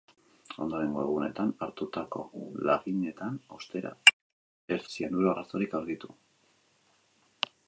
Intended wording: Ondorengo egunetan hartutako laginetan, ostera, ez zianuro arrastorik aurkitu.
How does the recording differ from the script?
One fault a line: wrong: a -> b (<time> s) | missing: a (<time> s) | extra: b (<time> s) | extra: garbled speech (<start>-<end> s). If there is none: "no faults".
no faults